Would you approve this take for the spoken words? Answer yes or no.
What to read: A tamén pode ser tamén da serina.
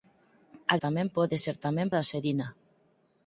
yes